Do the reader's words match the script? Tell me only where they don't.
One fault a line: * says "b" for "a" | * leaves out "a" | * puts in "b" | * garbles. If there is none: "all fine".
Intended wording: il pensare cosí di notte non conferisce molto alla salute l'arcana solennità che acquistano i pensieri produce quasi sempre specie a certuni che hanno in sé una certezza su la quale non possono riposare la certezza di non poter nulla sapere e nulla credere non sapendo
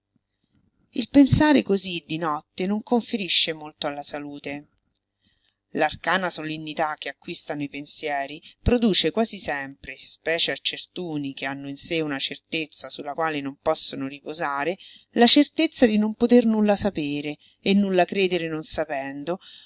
all fine